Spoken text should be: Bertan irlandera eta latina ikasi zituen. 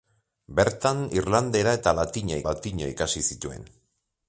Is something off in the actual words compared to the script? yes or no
yes